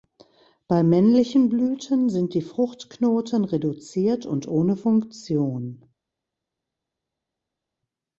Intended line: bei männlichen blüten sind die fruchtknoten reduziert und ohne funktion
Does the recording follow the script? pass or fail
pass